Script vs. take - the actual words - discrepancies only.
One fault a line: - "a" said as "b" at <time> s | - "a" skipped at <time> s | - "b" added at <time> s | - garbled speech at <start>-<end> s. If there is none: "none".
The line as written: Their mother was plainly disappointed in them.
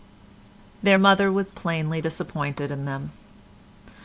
none